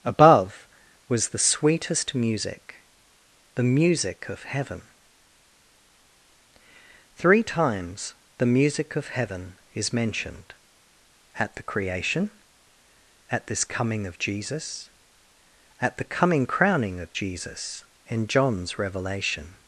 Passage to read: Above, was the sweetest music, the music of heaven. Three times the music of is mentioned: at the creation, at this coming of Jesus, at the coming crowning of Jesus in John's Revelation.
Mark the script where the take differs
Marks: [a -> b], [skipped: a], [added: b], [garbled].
Above, was the sweetest music, the music of heaven. Three times the music of [added: heaven] is mentioned: at the creation, at this coming of Jesus, at the coming crowning of Jesus in John's Revelation.